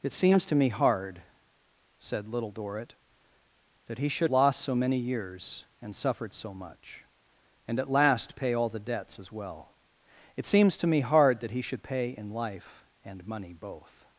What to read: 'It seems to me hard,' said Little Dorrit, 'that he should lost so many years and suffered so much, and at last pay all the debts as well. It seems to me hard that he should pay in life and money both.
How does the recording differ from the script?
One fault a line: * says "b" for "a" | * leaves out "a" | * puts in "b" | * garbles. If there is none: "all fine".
all fine